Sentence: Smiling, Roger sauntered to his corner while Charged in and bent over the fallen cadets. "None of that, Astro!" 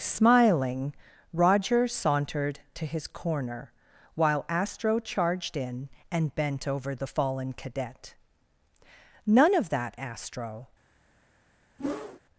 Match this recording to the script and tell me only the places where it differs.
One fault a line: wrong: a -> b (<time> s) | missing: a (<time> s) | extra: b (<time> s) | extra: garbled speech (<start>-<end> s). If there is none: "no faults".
extra: Astro (4.5 s)
wrong: cadets -> cadet (7.5 s)